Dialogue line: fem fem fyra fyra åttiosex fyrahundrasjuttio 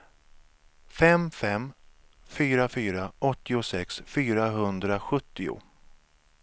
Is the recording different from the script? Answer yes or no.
no